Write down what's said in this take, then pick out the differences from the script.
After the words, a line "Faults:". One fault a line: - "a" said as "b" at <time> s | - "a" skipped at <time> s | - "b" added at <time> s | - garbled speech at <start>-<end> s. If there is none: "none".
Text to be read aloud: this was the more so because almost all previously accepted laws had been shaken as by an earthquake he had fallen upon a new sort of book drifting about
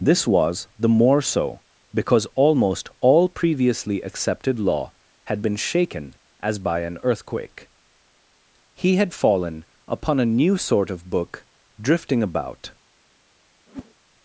this was the more so because almost all previously accepted law had been shaken as by an earthquake he had fallen upon a new sort of book drifting about
Faults:
- "laws" said as "law" at 4.6 s